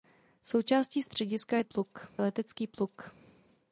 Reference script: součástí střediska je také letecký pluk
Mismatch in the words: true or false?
true